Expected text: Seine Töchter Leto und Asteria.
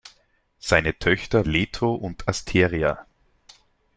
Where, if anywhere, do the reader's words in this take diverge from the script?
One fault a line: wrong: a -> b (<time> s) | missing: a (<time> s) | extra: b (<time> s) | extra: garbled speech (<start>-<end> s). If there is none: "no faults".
no faults